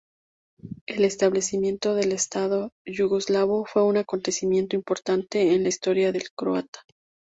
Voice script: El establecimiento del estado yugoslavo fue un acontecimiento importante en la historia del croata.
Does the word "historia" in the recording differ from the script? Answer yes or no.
no